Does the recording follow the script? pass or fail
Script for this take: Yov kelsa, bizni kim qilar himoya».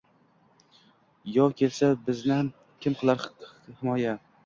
pass